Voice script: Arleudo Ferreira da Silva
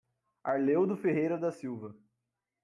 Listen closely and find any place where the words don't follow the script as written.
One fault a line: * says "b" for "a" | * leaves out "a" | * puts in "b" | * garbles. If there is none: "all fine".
all fine